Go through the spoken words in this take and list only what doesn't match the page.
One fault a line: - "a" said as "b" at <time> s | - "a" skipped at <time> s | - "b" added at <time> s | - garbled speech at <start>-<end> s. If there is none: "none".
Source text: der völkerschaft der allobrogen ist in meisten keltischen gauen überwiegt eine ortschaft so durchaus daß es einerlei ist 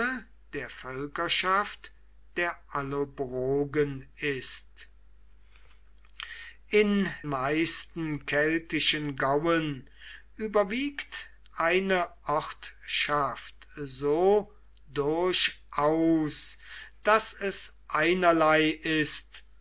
none